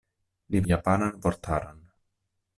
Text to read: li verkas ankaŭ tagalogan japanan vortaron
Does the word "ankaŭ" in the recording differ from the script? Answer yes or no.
yes